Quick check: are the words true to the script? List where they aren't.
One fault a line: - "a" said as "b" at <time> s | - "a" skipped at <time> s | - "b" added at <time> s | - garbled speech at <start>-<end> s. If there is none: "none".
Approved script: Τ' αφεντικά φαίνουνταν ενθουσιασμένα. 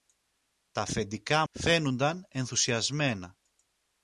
none